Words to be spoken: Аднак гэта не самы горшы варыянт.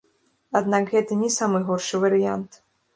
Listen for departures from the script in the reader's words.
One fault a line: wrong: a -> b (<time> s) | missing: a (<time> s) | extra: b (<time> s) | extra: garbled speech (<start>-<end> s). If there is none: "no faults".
no faults